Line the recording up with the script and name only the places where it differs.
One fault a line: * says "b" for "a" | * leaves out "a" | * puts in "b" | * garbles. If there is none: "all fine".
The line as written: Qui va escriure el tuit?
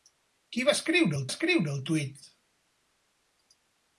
* puts in "escriure el"